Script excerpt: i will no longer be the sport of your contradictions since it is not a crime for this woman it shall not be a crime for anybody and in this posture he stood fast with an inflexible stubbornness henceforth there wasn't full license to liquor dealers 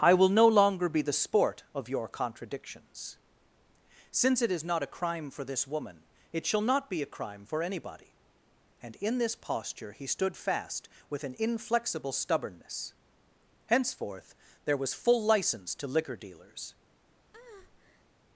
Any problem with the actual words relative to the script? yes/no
yes